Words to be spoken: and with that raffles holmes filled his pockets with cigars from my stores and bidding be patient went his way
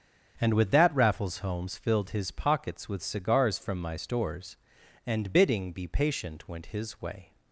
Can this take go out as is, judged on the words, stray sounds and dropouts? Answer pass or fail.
pass